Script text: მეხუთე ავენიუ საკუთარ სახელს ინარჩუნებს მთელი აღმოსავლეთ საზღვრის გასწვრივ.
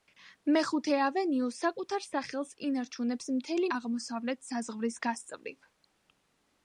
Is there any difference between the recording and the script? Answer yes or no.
no